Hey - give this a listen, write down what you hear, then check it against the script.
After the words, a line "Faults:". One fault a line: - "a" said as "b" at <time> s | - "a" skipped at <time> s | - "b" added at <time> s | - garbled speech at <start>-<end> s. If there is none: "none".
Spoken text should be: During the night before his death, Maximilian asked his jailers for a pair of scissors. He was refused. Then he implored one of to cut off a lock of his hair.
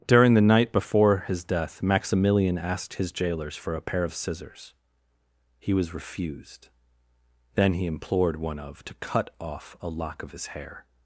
During the night before his death, Maximilian asked his jailers for a pair of scissors. He was refused. Then he implored one of to cut off a lock of his hair.
Faults:
none